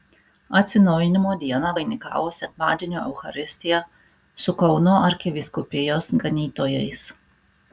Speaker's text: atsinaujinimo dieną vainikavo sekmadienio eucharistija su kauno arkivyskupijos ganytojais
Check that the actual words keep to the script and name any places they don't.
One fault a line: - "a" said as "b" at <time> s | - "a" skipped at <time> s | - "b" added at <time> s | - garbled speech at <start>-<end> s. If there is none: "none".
none